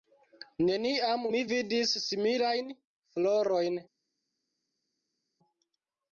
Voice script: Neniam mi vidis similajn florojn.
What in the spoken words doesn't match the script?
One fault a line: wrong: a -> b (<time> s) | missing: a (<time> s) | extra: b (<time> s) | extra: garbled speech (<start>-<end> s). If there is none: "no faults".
no faults